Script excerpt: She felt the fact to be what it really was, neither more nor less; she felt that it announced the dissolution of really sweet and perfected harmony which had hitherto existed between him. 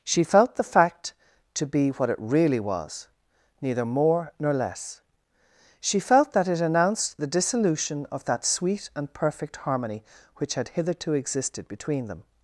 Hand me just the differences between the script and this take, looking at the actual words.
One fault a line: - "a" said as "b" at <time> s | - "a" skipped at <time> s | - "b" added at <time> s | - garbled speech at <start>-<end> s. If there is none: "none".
- "really" said as "that" at 8.2 s
- "perfected" said as "perfect" at 9.1 s
- "him" said as "them" at 12.1 s